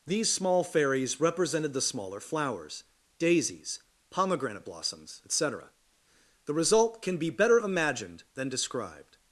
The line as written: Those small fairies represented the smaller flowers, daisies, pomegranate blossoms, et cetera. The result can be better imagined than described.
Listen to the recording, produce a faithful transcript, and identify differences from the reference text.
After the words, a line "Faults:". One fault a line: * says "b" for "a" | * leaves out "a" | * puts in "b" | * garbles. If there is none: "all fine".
These small fairies represented the smaller flowers, daisies, pomegranate blossoms, et cetera. The result can be better imagined than described.
Faults:
* says "These" for "Those"